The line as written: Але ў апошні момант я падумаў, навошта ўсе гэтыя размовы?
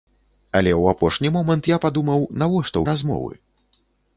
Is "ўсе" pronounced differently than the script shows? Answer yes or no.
yes